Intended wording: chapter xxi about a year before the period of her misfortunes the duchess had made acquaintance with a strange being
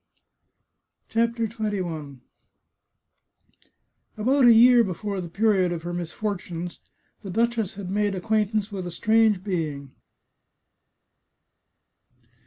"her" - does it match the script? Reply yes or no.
yes